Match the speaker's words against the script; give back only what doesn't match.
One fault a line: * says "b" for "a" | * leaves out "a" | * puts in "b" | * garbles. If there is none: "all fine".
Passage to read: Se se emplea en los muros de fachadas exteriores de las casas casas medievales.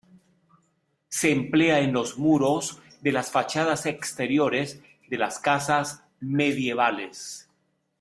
* leaves out "se"
* puts in "las"
* leaves out "casas"